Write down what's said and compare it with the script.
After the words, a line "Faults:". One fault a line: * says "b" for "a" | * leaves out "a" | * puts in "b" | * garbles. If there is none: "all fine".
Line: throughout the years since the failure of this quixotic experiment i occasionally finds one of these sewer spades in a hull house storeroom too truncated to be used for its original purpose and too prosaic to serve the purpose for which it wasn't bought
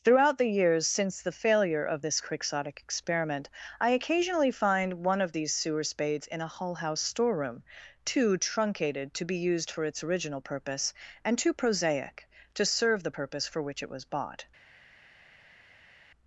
throughout the years since the failure of this quixotic experiment i occasionally find one of these sewer spades in a hull house storeroom too truncated to be used for its original purpose and too prosaic to serve the purpose for which it was bought
Faults:
* says "find" for "finds"
* says "was" for "wasn't"